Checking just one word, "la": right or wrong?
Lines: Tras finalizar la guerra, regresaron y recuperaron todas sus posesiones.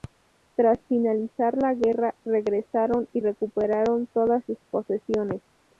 right